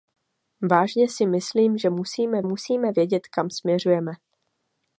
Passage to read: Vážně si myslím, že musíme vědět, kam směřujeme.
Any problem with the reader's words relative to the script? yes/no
yes